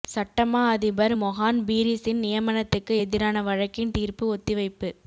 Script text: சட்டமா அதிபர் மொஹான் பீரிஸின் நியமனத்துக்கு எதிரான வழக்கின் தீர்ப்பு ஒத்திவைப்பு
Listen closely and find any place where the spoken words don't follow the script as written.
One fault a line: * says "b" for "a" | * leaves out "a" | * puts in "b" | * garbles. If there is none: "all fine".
all fine